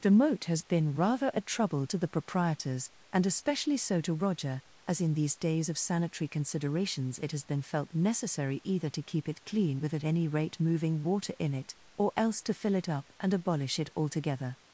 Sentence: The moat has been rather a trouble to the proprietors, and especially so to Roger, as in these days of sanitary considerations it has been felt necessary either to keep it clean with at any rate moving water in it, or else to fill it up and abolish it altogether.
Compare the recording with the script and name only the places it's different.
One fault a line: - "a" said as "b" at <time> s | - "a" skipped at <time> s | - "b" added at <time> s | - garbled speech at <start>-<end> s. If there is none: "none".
none